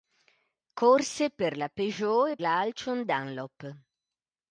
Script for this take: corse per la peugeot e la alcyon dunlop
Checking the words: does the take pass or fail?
pass